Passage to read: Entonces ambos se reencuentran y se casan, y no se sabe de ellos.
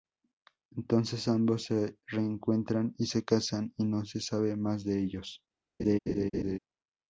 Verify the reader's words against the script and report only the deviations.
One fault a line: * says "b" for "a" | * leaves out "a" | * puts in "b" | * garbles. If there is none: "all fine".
* puts in "más"